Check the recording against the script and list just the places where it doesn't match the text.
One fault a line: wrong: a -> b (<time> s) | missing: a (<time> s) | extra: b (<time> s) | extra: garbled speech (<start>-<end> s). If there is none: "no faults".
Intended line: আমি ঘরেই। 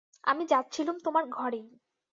extra: যাচ্ছিলুম তোমার (0.5 s)